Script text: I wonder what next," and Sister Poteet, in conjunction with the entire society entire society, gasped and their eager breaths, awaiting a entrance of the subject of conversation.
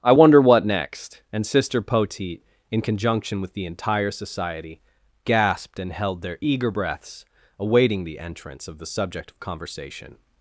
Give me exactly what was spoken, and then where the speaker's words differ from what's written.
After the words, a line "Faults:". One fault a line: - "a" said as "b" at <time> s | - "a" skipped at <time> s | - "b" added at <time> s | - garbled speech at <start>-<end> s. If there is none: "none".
I wonder what next," and Sister Poteet, in conjunction with the entire society, gasped and held their eager breaths, awaiting the entrance of the subject of conversation.
Faults:
- "entire society" skipped at 4.8 s
- "held" added at 5.9 s
- "a" said as "the" at 8.0 s